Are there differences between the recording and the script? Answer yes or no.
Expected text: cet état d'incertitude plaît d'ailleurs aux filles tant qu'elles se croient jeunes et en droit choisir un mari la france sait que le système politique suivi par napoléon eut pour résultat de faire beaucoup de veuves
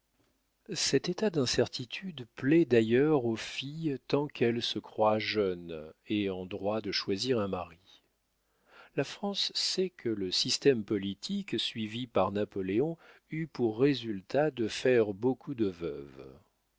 yes